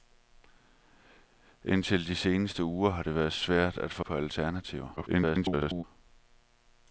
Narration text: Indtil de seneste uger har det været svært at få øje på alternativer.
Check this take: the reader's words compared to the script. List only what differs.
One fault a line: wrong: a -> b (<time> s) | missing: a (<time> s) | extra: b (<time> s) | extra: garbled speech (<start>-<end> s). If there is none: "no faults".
missing: øje (4.0 s)
extra: garbled speech (5.0-5.8 s)